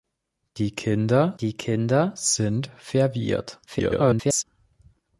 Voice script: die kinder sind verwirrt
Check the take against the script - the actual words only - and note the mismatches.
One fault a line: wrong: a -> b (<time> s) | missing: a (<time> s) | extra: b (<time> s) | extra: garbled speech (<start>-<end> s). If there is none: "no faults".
extra: die kinder (1.4 s)
extra: garbled speech (3.7-4.4 s)